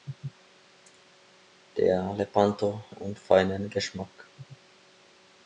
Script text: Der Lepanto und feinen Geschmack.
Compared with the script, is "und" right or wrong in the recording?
right